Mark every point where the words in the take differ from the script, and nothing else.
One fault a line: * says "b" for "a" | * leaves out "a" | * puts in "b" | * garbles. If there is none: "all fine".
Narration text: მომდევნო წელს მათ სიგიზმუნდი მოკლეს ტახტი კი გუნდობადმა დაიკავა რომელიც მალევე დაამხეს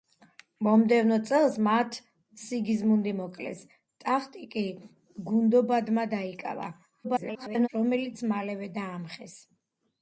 * garbles